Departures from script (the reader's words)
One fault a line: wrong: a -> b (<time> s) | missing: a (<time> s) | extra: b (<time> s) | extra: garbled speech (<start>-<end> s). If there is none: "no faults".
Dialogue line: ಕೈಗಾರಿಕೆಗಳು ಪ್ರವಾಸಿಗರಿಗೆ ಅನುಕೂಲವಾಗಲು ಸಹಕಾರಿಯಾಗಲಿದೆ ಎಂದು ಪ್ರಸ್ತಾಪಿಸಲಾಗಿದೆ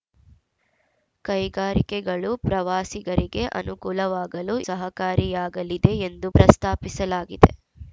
no faults